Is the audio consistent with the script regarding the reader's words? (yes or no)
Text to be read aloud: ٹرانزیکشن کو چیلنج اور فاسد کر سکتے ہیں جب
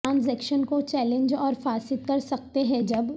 yes